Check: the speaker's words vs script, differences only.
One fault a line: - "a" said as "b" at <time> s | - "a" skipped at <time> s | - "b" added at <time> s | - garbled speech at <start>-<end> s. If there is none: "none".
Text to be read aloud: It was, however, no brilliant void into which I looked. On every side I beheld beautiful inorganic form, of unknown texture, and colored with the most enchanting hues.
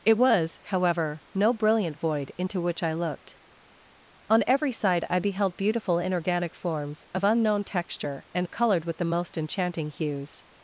- "form" said as "forms" at 6.5 s